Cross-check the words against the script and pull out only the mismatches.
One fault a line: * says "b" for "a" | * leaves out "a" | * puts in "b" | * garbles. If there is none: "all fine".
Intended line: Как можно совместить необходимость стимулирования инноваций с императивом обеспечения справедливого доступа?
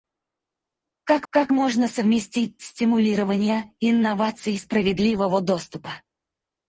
* puts in "как"
* leaves out "необходимость"
* leaves out "с императивом обеспечения"